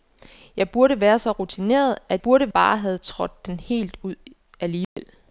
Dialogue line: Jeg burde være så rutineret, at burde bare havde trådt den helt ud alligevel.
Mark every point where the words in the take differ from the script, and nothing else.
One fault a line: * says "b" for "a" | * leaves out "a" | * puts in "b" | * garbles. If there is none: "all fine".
all fine